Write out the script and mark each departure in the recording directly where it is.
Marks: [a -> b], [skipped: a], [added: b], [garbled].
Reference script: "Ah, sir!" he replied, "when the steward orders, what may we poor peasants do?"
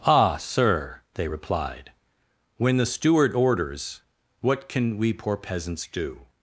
"Ah, sir!" [he -> they] replied, "when the steward orders, what [may -> can] we poor peasants do?"